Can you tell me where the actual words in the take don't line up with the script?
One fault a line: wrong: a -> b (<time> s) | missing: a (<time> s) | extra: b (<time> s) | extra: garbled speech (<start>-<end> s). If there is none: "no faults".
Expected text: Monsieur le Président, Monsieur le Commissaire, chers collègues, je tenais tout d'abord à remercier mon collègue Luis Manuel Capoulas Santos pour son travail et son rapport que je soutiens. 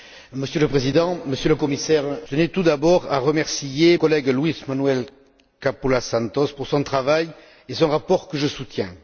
missing: chers collègues je (2.0 s)
missing: mon (4.0 s)